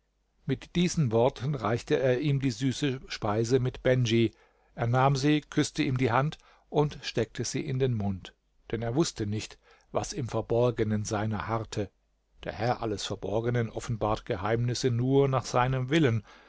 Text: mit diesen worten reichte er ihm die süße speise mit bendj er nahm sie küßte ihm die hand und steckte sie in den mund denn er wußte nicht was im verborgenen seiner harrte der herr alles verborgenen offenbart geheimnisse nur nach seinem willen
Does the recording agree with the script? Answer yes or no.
yes